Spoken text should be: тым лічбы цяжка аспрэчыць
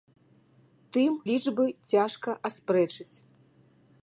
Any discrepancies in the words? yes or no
no